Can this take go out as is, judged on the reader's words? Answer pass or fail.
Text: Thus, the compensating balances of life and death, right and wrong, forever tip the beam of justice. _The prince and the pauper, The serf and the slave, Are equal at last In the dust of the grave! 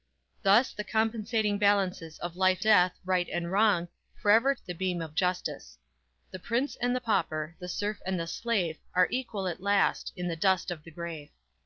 fail